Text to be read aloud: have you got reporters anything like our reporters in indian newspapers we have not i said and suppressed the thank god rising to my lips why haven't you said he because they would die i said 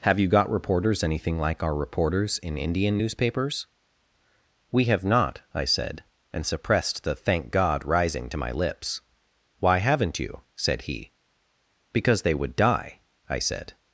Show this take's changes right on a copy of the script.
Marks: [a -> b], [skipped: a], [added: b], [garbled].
have you got reporters anything like our reporters in indian newspapers we have not i said and suppressed the thank god rising to my lips why haven't you said he because they would die i said